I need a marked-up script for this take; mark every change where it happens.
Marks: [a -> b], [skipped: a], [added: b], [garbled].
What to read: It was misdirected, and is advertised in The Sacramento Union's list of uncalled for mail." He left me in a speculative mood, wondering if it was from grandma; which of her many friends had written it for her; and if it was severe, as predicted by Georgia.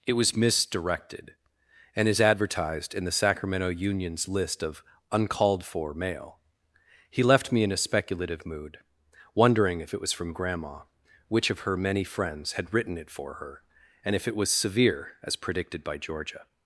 It was misdirected, and is advertised in The Sacramento Union's list of uncalled for mail." He left me in a speculative mood, wondering if it was from grandma; which of her many friends had written it for her; and if it was severe, as predicted by Georgia.